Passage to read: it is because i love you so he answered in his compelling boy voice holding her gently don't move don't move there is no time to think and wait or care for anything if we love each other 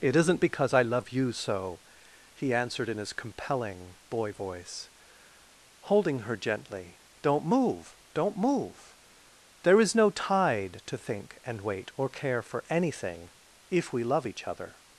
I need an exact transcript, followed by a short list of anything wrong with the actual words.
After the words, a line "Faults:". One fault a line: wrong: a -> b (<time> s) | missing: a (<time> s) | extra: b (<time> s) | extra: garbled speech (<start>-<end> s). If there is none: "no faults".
it isn't because i love you so he answered in his compelling boy voice holding her gently don't move don't move there is no tide to think and wait or care for anything if we love each other
Faults:
wrong: is -> isn't (0.1 s)
wrong: time -> tide (10.1 s)